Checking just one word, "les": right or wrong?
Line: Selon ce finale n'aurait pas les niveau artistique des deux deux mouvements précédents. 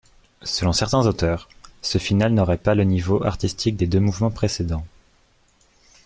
wrong